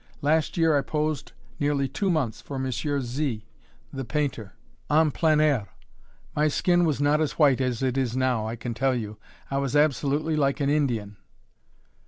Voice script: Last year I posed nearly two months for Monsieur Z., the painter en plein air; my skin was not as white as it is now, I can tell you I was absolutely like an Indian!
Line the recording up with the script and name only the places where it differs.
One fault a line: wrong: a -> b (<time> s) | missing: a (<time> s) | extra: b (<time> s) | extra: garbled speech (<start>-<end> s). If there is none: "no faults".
no faults